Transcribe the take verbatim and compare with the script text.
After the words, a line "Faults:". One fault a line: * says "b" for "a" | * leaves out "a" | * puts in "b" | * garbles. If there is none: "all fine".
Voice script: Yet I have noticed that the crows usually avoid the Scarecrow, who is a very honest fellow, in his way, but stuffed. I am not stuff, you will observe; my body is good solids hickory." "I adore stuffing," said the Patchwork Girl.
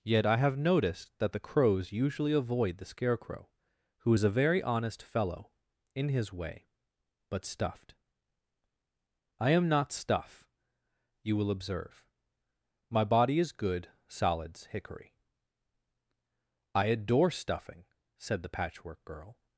Yet I have noticed that the crows usually avoid the Scarecrow, who is a very honest fellow, in his way, but stuffed. I am not stuff, you will observe; my body is good solids hickory." "I adore stuffing," said the Patchwork Girl.
Faults:
all fine